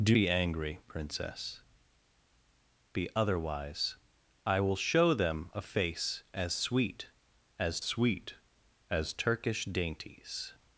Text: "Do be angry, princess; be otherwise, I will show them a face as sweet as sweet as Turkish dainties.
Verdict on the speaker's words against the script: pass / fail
pass